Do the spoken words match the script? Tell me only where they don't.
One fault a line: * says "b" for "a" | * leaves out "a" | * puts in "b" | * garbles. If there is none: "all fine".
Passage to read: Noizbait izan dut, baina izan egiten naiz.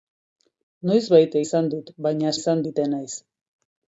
all fine